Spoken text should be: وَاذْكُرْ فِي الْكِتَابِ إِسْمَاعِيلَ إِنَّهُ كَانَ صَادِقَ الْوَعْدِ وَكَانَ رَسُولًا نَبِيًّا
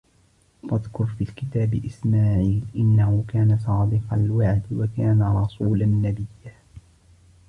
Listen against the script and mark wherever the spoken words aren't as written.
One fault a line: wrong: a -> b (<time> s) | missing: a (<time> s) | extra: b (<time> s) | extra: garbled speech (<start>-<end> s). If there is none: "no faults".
no faults